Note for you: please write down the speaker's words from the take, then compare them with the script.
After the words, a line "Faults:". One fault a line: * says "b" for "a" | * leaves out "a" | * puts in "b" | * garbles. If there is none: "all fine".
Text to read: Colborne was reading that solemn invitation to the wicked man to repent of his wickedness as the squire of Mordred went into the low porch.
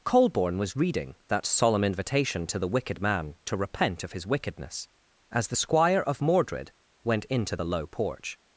Colborne was reading that solemn invitation to the wicked man to repent of his wickedness as the squire of Mordred went into the low porch.
Faults:
all fine